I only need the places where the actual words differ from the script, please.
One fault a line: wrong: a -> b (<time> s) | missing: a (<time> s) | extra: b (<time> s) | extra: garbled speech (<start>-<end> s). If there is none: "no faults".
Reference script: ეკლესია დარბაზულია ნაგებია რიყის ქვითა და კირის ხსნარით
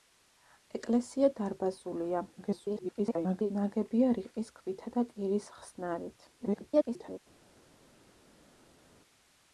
extra: garbled speech (2.4-3.5 s)
extra: garbled speech (6.4-7.2 s)